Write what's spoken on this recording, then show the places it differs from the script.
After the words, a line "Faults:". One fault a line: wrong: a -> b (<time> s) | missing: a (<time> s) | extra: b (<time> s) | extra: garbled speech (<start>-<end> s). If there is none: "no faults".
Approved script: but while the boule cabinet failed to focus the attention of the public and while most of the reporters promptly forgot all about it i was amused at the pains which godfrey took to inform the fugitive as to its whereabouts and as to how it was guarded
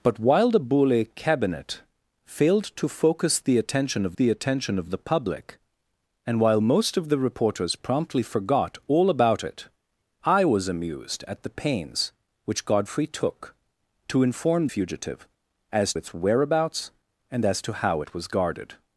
but while the boule cabinet failed to focus the attention of the attention of the public and while most of the reporters promptly forgot all about it i was amused at the pains which godfrey took to inform fugitive as its whereabouts and as to how it was guarded
Faults:
extra: attention of the (4.3 s)
missing: the (14.7 s)
missing: to (15.9 s)